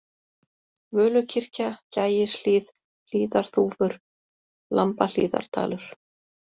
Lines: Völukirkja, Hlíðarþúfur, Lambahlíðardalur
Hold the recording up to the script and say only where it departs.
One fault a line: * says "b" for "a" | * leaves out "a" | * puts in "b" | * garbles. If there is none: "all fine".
* puts in "Gægishlíð"